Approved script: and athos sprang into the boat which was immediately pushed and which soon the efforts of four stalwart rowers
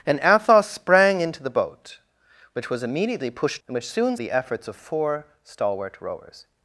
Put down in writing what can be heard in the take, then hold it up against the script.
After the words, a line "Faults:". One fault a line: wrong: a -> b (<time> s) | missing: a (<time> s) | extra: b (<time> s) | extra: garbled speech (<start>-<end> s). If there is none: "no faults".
and athos sprang into the boat which was immediately pushed and which soon the efforts of four stalwart rowers
Faults:
no faults